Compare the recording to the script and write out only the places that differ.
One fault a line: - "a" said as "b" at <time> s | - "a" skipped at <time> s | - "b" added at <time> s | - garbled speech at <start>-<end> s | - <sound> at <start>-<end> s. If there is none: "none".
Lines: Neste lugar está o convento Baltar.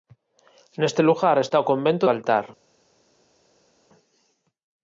none